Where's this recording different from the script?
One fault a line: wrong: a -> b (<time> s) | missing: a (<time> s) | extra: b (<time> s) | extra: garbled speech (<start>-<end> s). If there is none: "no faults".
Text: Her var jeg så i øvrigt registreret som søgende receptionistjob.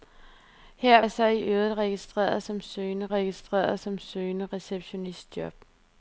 missing: var (1.0 s)
extra: registreret som søgende (3.1 s)